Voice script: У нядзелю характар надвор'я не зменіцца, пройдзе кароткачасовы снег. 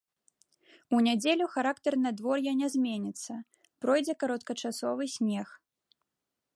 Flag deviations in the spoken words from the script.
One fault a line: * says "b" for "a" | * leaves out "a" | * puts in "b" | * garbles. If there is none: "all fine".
all fine